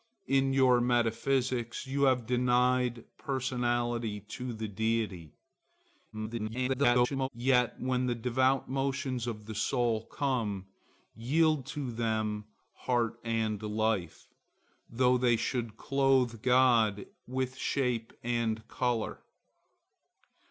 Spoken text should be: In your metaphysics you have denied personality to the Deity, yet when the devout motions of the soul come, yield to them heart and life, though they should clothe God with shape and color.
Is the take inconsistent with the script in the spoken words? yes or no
yes